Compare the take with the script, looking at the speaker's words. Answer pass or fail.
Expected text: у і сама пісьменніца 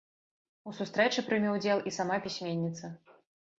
fail